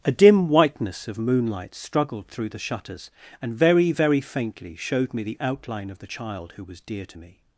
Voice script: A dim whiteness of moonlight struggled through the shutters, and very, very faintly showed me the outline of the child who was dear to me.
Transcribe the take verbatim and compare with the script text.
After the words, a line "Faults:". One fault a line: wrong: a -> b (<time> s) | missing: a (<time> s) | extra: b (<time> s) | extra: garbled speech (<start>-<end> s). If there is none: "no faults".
A dim whiteness of moonlight struggled through the shutters, and very, very faintly showed me the outline of the child who was dear to me.
Faults:
no faults